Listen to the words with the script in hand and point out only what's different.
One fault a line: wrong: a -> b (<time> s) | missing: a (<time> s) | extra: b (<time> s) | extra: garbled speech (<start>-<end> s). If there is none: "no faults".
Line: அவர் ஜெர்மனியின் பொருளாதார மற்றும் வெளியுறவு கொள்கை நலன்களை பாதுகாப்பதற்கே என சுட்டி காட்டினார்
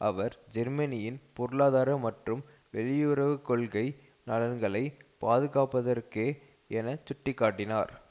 no faults